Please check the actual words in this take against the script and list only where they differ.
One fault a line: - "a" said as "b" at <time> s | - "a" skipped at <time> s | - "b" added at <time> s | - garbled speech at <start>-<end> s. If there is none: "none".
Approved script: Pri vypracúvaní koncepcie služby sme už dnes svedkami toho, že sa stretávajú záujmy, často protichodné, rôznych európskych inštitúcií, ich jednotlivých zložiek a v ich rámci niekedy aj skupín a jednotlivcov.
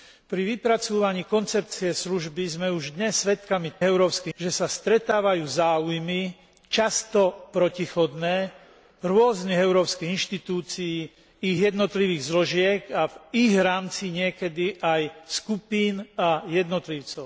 - "toho" said as "európskych" at 3.8 s